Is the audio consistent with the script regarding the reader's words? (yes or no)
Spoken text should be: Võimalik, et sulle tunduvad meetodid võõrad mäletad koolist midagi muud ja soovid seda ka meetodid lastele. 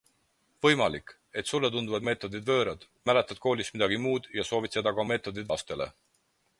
yes